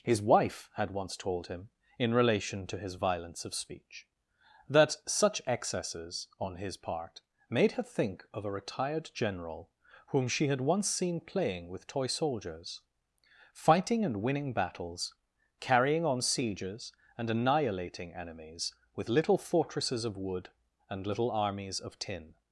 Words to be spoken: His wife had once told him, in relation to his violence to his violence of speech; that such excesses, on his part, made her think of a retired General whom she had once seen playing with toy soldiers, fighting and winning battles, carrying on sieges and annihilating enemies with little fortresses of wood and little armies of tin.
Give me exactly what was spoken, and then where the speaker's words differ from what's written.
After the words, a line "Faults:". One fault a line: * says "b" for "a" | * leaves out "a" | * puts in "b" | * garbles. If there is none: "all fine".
His wife had once told him, in relation to his violence of speech; that such excesses, on his part, made her think of a retired General whom she had once seen playing with toy soldiers, fighting and winning battles, carrying on sieges and annihilating enemies with little fortresses of wood and little armies of tin.
Faults:
* leaves out "to his violence"